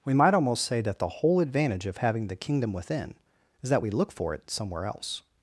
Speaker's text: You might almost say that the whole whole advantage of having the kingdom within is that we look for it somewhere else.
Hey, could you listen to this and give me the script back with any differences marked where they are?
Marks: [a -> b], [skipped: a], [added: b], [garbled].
[You -> We] might almost say that the whole [skipped: whole] advantage of having the kingdom within is that we look for it somewhere else.